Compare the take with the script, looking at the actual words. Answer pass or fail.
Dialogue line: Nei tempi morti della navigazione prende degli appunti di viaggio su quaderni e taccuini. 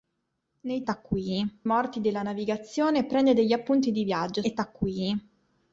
fail